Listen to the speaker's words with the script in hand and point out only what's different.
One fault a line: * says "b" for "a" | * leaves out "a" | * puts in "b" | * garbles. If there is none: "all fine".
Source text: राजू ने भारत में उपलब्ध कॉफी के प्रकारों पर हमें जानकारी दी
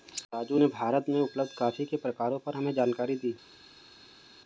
all fine